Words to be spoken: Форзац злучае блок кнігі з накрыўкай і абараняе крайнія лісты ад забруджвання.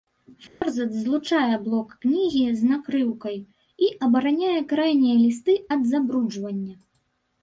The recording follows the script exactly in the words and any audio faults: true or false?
false